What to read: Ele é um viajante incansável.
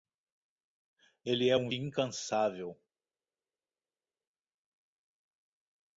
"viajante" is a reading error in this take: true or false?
true